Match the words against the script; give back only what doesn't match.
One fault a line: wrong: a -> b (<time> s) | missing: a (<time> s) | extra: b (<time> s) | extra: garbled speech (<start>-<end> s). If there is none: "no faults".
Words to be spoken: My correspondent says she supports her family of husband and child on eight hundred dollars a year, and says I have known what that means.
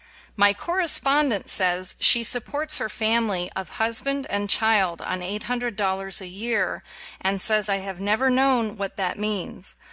extra: never (8.0 s)